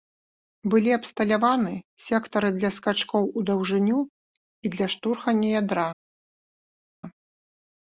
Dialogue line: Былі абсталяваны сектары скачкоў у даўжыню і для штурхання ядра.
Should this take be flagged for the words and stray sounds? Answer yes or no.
yes